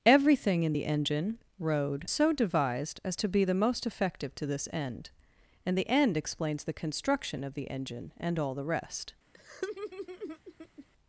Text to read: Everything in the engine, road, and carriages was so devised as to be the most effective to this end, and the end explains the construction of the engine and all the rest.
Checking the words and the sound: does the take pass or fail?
fail